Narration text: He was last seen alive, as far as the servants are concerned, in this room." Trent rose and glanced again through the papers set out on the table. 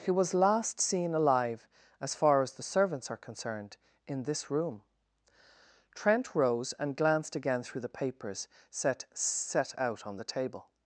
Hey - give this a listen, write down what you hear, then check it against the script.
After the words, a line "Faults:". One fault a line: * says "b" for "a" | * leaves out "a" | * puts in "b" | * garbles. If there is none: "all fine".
He was last seen alive, as far as the servants are concerned, in this room." Trent rose and glanced again through the papers set set out on the table.
Faults:
* puts in "set"